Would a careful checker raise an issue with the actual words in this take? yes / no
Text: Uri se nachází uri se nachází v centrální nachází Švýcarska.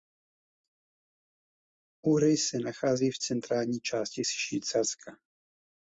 yes